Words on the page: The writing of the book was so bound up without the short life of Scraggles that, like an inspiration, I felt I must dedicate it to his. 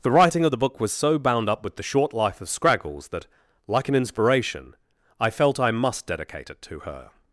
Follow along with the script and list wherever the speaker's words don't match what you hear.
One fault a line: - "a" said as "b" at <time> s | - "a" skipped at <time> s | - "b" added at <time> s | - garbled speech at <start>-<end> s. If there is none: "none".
- "without" said as "with" at 1.6 s
- "his" said as "her" at 6.8 s